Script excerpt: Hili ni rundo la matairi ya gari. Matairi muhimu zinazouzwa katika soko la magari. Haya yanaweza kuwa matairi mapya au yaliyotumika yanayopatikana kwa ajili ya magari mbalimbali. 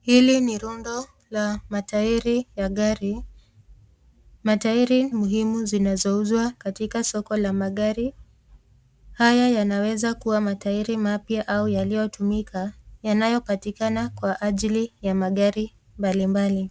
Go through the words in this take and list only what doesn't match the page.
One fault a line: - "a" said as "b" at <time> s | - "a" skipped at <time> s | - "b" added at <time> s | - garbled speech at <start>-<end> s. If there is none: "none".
none